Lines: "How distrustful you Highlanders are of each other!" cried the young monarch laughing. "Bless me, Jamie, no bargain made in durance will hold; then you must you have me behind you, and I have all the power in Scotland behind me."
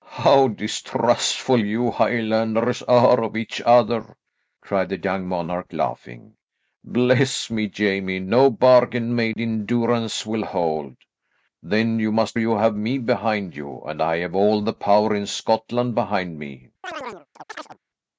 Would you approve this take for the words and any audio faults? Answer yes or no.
no